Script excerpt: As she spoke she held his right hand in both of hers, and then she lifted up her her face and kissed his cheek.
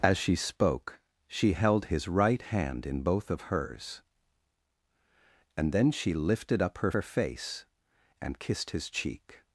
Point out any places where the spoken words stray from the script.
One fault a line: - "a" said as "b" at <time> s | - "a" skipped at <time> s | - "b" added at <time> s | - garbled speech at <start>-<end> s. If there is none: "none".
none